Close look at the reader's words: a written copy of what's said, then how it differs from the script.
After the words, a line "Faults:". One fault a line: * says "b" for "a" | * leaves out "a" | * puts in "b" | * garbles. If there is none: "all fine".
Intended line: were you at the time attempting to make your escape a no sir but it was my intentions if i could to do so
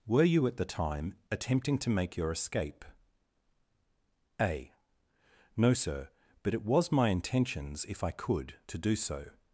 were you at the time attempting to make your escape a no sir but it was my intentions if i could to do so
Faults:
all fine